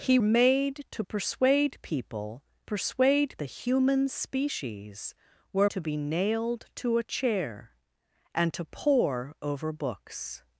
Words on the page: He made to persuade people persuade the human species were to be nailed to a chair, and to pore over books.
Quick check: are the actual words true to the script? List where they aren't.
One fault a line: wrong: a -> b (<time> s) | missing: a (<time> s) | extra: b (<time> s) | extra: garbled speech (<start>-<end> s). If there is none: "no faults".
no faults